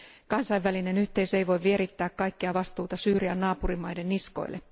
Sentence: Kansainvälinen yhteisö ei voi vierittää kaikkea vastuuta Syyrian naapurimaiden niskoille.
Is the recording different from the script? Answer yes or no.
no